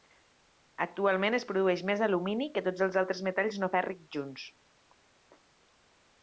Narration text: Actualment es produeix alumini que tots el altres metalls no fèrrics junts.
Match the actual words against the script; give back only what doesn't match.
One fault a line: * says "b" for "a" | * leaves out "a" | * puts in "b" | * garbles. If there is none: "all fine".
* puts in "més"
* says "els" for "el"